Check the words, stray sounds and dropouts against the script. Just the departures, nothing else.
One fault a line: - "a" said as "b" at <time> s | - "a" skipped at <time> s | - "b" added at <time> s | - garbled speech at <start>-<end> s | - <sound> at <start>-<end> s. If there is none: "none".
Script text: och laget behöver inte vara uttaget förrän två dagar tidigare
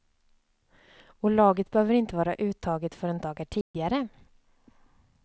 - "två" skipped at 3.2 s
- dropout at 3.6-3.7 s